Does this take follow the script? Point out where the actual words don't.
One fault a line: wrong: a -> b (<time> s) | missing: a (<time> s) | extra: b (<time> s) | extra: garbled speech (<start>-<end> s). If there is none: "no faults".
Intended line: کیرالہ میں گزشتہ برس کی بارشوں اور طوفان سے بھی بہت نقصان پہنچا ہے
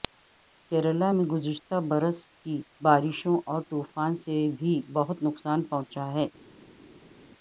no faults